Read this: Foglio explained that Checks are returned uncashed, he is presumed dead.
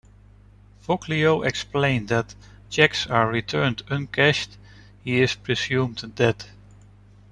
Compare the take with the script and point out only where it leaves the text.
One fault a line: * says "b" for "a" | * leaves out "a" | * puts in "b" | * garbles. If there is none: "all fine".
all fine